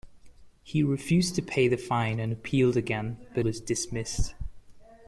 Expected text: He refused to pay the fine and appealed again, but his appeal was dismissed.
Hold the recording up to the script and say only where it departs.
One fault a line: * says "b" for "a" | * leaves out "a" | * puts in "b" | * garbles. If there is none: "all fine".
* leaves out "his appeal"